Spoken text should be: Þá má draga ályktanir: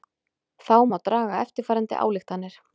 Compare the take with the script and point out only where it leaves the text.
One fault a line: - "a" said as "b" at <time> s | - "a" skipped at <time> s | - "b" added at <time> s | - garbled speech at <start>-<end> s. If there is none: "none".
- "eftirfarandi" added at 1.5 s